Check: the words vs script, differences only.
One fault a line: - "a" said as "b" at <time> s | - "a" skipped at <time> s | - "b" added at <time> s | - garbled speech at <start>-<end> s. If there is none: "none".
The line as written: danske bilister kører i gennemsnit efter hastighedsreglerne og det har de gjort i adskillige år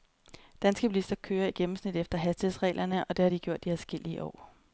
none